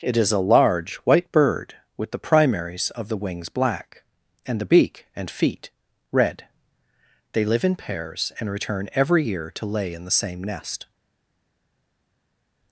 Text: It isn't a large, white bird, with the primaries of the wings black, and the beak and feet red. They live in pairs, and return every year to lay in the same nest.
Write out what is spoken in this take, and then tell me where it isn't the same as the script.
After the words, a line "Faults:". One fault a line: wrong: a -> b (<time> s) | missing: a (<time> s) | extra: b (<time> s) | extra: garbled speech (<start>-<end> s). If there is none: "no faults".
It is a large, white bird, with the primaries of the wings black, and the beak and feet red. They live in pairs, and return every year to lay in the same nest.
Faults:
wrong: isn't -> is (0.2 s)